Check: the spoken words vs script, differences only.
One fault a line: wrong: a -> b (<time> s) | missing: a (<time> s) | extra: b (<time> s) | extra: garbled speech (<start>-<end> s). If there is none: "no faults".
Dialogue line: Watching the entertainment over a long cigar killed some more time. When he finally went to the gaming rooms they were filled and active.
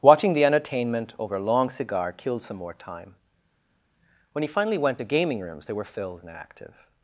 missing: the (5.0 s)